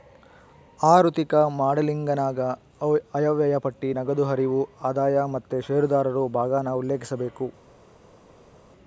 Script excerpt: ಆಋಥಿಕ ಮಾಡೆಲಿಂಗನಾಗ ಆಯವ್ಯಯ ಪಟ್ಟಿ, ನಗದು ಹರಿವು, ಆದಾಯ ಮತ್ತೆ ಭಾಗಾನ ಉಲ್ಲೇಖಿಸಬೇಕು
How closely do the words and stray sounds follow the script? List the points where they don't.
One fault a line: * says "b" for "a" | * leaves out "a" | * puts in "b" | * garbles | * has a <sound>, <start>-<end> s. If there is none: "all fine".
* puts in "ಷೇರುದಾರರು"